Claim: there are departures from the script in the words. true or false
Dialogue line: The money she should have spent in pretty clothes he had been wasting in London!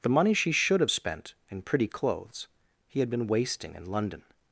false